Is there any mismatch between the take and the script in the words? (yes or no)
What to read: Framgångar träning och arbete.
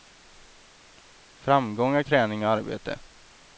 no